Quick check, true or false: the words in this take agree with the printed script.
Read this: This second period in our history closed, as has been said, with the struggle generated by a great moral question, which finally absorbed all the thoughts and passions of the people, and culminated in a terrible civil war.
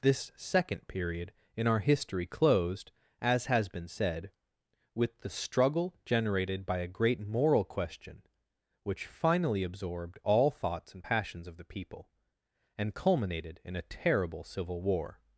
false